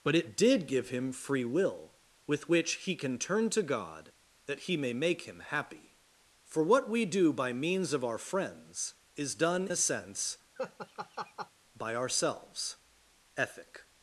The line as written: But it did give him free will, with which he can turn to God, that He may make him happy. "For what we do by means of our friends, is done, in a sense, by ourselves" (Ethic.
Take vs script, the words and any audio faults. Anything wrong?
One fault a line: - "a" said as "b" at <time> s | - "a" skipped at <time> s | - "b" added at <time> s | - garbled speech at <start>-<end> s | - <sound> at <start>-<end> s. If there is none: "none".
- "in" skipped at 9.7 s
- laugh at 10.6-11.5 s